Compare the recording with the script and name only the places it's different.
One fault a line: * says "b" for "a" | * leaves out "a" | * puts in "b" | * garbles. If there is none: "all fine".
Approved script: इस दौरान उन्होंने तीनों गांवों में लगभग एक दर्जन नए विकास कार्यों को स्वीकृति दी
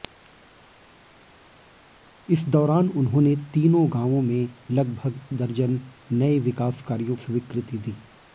* leaves out "एक"
* leaves out "को"